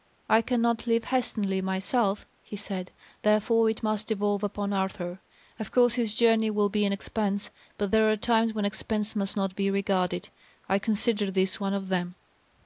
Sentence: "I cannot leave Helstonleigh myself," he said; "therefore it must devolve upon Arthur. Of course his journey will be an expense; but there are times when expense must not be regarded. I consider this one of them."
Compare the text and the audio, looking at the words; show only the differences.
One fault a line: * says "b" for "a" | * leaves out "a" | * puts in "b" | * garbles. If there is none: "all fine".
all fine